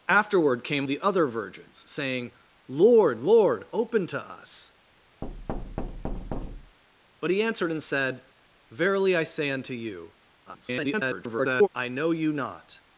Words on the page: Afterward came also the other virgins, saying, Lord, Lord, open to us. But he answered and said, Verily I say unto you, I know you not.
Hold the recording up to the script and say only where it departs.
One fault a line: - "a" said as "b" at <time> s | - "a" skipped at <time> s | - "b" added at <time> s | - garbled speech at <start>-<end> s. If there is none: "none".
- "also" skipped at 0.9 s
- garbled speech at 10.5-11.7 s